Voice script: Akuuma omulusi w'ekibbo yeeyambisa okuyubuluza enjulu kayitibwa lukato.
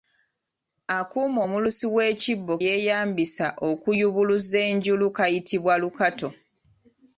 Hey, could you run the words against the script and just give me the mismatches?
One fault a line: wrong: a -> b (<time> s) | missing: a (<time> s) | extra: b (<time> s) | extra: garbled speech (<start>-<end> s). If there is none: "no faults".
no faults